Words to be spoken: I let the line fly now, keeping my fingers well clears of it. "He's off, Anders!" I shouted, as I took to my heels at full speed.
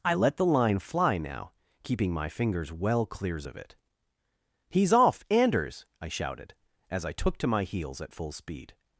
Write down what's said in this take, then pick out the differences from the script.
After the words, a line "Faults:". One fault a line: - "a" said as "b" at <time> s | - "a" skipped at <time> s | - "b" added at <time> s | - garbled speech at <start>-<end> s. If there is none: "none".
I let the line fly now, keeping my fingers well clears of it. "He's off, Anders!" I shouted, as I took to my heels at full speed.
Faults:
none